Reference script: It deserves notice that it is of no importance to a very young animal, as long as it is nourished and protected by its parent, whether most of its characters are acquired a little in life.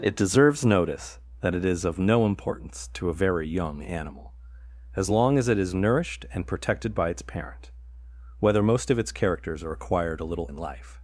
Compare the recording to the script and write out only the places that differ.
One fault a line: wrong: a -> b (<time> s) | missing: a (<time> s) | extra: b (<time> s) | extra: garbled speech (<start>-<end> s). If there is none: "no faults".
no faults